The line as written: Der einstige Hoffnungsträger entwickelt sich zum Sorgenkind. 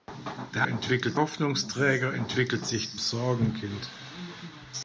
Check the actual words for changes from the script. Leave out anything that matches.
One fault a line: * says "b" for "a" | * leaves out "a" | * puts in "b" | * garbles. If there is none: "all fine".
* says "entwickelt" for "einstige"
* leaves out "zum"